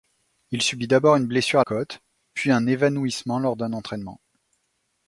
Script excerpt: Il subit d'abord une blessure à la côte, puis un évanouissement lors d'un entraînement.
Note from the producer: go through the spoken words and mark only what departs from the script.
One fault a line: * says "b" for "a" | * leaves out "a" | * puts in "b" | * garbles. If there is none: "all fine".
* leaves out "la"